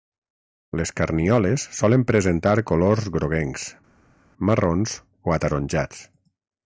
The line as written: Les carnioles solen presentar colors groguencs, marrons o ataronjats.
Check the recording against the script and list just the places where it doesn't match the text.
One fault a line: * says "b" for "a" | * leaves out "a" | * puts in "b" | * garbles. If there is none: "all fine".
all fine